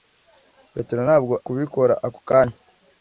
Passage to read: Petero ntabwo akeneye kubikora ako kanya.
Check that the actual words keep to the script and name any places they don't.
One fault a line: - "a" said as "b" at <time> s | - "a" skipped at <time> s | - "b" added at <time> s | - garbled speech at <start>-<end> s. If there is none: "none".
- "akeneye" skipped at 1.3 s